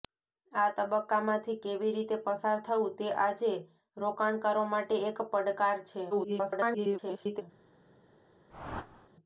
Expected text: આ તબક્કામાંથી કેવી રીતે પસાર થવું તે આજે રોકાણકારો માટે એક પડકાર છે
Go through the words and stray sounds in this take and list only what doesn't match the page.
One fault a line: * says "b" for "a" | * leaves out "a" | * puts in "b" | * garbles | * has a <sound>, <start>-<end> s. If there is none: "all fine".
* garbles
* has a whoosh, 8.5-9.1 s